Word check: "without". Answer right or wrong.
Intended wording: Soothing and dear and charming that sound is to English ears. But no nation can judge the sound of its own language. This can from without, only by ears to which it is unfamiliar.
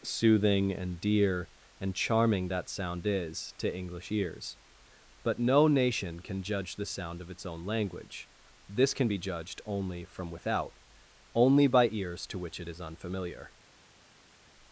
right